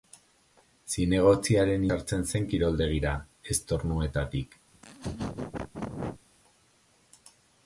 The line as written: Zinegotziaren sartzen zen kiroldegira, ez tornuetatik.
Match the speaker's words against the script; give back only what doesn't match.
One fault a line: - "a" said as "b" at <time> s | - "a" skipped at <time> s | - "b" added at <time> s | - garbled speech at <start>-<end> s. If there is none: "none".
none